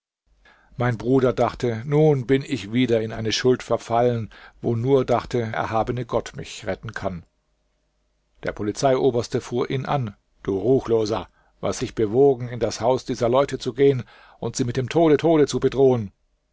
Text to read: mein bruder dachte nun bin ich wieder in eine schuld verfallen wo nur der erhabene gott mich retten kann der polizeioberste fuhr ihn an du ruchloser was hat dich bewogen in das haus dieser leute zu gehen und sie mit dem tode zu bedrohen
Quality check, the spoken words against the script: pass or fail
fail